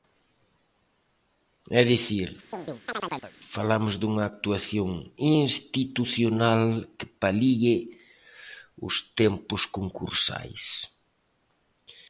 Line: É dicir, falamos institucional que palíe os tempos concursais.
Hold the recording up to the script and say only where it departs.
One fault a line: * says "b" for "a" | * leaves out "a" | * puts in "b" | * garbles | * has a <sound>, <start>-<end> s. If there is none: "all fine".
* has a chirp, 2.5-3.3 s
* puts in "dunha actuación"